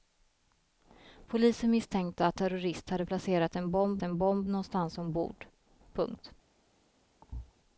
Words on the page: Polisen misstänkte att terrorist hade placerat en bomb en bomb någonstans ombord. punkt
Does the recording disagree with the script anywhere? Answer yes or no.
no